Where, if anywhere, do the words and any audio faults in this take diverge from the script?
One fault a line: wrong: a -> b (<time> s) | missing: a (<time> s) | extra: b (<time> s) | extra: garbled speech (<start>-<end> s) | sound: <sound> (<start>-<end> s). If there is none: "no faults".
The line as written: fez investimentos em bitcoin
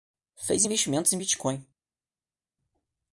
no faults